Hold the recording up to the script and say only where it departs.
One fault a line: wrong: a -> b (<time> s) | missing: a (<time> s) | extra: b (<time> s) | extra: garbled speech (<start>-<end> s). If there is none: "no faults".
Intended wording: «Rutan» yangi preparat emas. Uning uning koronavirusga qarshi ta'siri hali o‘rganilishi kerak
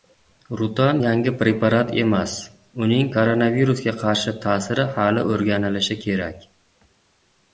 missing: uning (3.1 s)